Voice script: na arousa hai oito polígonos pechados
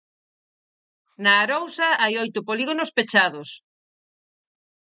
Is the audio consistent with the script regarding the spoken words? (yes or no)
yes